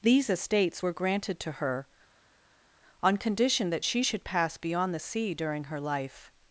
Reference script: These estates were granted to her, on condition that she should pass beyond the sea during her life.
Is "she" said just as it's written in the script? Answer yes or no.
yes